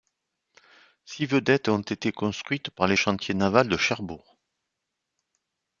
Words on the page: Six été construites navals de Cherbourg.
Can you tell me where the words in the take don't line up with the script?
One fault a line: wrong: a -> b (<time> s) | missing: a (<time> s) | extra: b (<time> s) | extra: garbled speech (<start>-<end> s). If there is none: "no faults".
extra: vedettes ont (1.3 s)
extra: par les chantiers (2.7 s)